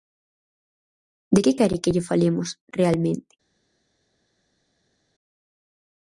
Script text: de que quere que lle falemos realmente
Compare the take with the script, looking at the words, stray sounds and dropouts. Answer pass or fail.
pass